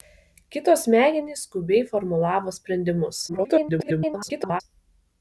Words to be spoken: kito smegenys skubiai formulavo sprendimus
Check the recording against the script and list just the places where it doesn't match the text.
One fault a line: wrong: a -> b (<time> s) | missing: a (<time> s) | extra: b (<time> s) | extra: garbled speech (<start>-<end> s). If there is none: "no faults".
extra: garbled speech (3.3-4.6 s)